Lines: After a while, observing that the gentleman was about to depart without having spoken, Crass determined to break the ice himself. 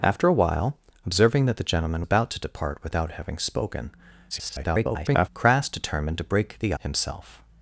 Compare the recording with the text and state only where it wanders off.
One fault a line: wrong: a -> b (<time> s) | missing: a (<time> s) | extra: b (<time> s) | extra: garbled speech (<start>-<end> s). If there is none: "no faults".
missing: was (2.1 s)
extra: garbled speech (4.3-5.3 s)
missing: ice (6.7 s)